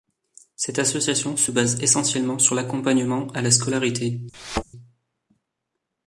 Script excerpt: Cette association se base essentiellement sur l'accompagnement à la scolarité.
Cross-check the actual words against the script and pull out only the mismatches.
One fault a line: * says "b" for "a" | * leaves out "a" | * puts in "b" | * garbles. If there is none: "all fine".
all fine